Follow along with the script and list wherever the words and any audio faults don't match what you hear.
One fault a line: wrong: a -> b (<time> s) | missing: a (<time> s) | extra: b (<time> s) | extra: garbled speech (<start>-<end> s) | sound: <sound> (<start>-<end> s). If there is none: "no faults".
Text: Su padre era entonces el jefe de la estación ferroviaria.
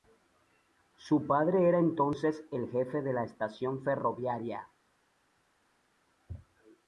no faults